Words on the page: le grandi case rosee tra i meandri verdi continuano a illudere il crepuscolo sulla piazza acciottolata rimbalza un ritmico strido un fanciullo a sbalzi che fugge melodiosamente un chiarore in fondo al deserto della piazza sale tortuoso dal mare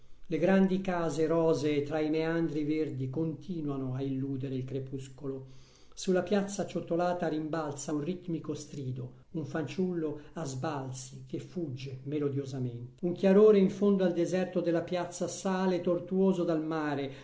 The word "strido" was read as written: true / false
true